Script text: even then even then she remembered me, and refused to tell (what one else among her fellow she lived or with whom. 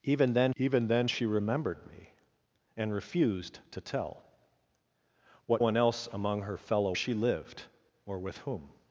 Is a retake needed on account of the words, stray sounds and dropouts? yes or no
no